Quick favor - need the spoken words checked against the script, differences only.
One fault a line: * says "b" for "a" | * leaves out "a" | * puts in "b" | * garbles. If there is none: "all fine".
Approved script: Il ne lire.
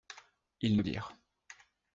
all fine